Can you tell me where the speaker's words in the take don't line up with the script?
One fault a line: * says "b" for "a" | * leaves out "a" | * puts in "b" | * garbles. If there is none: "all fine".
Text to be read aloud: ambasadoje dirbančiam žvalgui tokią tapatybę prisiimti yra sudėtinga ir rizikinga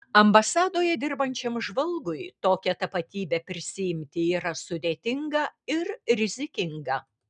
all fine